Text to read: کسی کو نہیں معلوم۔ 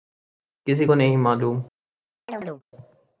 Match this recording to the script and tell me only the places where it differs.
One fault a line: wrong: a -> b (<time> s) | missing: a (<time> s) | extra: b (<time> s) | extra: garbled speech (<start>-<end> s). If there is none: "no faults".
no faults